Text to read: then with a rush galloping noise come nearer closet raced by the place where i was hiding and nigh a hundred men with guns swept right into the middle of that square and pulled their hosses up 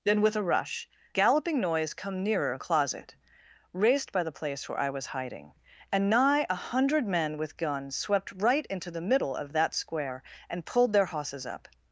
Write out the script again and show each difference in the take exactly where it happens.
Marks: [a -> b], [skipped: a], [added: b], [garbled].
then with a rush galloping noise come nearer closet raced by the place where i was hiding and nigh a hundred men with guns swept right into the middle of that square and pulled their hosses up